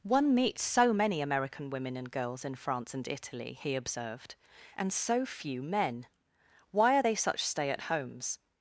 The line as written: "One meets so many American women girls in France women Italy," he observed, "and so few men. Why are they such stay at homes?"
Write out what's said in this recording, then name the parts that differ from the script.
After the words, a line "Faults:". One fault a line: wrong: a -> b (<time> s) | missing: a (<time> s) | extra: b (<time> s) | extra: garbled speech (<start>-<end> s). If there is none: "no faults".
"One meets so many American women and girls in France and Italy," he observed, "and so few men. Why are they such stay at homes?"
Faults:
extra: and (1.9 s)
wrong: women -> and (3.0 s)